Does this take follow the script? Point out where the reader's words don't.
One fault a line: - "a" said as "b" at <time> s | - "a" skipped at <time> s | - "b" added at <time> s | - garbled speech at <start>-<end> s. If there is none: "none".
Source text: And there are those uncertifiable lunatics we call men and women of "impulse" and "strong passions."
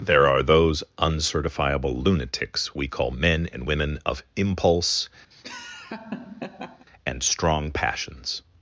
- "And" skipped at 0.0 s